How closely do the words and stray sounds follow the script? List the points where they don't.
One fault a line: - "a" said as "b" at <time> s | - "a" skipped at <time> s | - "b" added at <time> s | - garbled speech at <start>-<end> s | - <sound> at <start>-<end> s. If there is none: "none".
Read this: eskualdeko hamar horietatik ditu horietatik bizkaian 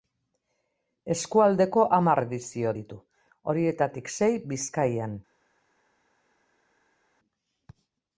- "horietatik" said as "edizio" at 2.2 s
- "sei" added at 4.2 s